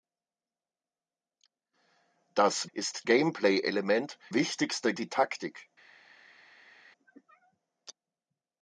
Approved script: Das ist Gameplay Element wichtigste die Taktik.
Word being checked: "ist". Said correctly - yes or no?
yes